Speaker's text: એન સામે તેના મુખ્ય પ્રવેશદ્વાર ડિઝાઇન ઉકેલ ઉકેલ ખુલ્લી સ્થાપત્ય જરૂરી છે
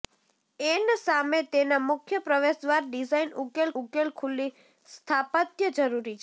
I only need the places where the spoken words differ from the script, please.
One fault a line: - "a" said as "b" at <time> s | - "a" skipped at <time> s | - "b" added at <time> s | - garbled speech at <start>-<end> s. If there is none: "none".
none